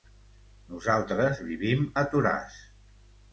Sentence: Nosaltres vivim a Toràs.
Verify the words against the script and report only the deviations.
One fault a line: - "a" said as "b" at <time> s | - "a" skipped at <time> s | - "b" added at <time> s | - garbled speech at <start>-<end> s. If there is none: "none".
none